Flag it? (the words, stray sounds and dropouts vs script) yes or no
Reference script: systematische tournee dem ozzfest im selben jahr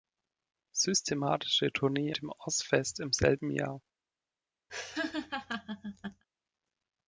yes